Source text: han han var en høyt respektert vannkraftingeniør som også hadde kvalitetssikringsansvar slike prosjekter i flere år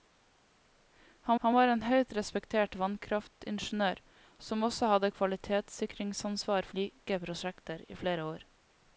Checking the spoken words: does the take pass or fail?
pass